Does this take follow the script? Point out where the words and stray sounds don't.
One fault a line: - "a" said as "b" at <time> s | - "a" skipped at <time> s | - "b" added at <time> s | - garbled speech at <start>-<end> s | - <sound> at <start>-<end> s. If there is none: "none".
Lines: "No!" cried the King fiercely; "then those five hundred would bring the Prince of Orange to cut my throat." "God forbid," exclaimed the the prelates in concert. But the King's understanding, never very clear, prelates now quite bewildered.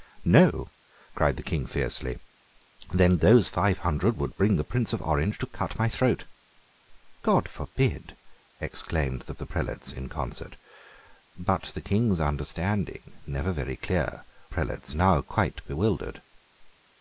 none